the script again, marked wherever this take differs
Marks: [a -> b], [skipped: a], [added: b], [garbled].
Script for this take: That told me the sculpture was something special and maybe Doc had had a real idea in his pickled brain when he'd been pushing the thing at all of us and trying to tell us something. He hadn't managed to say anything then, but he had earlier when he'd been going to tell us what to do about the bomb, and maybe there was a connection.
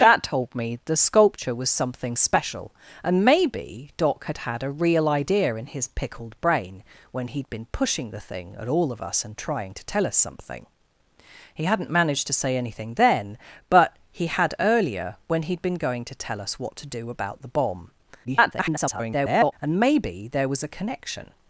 That told me the sculpture was something special and maybe Doc had had a real idea in his pickled brain when he'd been pushing the thing at all of us and trying to tell us something. He hadn't managed to say anything then, but he had earlier when he'd been going to tell us what to do about the bomb, [garbled] and maybe there was a connection.